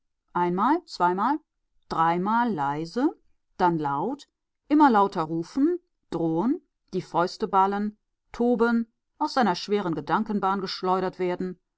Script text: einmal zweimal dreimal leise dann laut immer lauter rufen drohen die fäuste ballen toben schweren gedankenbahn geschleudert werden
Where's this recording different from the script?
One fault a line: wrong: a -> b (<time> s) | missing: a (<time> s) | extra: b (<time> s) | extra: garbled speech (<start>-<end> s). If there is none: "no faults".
extra: aus seiner (9.2 s)